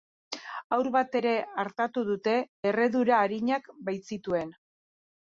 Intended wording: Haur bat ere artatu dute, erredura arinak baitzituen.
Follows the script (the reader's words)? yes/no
yes